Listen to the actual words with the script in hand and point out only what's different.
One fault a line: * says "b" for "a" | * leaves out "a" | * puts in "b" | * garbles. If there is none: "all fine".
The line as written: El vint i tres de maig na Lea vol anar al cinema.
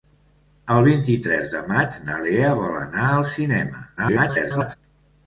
* garbles